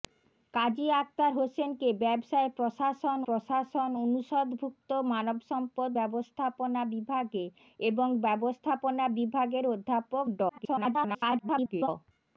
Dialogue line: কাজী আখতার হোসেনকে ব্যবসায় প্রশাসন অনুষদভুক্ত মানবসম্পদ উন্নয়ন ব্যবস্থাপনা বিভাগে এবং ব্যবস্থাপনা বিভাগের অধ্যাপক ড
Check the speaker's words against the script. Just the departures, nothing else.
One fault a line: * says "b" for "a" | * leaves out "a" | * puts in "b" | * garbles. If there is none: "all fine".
* puts in "প্রশাসন"
* leaves out "উন্নয়ন"
* garbles